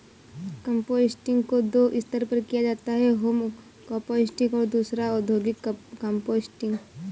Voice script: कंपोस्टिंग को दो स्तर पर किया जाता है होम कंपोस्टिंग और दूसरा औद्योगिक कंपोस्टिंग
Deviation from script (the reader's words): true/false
false